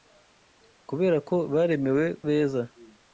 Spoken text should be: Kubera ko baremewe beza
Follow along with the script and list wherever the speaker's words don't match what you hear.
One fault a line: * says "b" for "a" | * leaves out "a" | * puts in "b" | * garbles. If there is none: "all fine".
all fine